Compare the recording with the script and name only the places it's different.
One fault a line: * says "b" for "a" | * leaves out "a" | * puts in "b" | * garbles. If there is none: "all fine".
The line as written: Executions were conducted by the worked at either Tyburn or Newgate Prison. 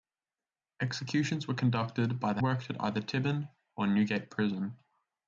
all fine